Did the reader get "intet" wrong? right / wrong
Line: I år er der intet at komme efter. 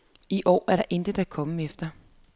right